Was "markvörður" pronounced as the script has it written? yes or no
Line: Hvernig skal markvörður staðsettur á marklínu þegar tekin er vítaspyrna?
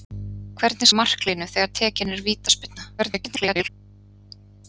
no